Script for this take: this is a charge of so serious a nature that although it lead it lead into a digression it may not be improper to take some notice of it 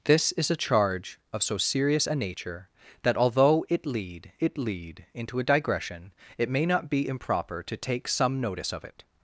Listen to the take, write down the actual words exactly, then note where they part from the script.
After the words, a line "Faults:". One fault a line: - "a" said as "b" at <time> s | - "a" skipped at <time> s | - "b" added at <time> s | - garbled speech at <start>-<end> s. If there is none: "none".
this is a charge of so serious a nature that although it lead it lead into a digression it may not be improper to take some notice of it
Faults:
none